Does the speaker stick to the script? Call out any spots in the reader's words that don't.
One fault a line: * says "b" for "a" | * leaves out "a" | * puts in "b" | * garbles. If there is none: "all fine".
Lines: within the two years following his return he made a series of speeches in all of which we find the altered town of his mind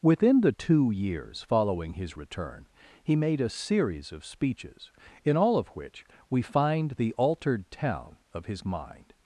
all fine